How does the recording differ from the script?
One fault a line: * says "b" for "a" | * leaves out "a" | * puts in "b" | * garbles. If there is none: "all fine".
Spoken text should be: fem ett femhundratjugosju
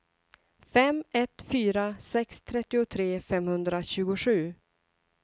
* puts in "fyra sex trettiotre"